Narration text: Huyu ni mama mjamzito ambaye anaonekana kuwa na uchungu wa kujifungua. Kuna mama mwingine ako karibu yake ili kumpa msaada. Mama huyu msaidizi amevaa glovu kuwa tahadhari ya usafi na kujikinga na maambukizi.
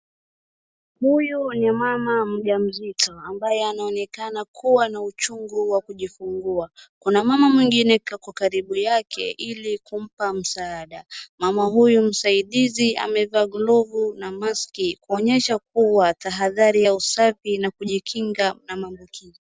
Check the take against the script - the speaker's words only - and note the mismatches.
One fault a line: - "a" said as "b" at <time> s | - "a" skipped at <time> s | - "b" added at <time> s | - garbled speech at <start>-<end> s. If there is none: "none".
- "na maski kuonyesha" added at 14.2 s